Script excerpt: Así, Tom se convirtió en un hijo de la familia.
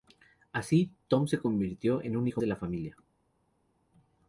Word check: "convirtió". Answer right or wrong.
right